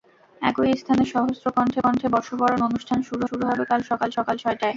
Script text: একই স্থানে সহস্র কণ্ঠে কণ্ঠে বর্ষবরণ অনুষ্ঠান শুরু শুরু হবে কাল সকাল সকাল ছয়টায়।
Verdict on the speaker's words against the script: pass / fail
pass